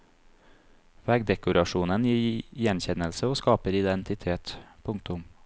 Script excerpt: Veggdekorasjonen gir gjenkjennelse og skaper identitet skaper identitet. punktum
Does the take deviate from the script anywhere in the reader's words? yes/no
yes